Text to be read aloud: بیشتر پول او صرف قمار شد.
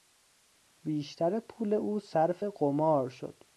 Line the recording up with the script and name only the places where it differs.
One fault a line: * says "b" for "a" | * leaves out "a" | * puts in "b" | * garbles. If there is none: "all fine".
all fine